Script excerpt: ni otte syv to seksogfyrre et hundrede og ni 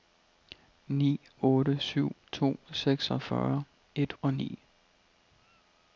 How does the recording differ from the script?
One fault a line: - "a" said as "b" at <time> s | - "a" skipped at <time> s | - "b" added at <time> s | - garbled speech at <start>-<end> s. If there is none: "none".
- "hundrede" skipped at 4.1 s